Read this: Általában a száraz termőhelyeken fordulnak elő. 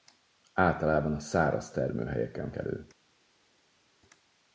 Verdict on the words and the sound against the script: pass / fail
fail